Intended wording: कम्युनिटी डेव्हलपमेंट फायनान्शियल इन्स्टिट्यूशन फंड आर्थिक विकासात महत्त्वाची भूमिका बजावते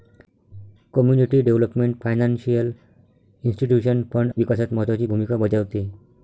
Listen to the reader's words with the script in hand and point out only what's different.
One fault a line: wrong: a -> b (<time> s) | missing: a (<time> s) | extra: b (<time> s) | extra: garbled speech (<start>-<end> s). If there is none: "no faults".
missing: आर्थिक (4.3 s)